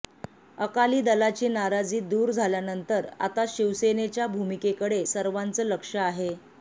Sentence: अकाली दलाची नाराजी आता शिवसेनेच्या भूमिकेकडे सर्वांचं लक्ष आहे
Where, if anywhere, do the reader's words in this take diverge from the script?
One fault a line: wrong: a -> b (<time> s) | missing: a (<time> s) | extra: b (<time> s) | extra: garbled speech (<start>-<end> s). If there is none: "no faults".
extra: दूर झाल्यानंतर (2.0 s)